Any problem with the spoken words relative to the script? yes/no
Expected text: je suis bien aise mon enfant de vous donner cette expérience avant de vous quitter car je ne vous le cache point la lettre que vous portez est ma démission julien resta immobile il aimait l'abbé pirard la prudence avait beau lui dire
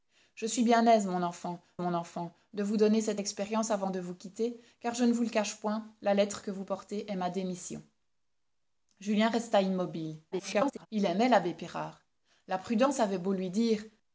yes